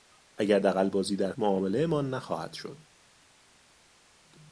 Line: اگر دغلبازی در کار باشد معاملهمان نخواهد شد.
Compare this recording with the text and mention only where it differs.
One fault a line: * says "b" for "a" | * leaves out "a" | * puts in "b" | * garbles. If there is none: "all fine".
* leaves out "کار باشد"